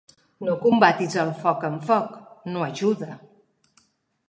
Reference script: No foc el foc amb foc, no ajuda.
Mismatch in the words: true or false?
true